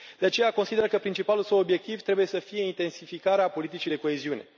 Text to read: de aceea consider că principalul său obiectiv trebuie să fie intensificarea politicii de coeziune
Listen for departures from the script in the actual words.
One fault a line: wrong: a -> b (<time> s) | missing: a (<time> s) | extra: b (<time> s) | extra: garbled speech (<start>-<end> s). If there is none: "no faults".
no faults